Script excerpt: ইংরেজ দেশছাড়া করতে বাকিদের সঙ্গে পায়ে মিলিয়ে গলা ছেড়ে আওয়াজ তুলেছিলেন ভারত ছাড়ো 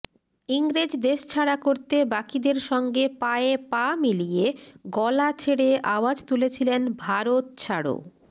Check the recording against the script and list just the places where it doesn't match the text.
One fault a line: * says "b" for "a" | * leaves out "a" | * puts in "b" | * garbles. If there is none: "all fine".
* puts in "পা"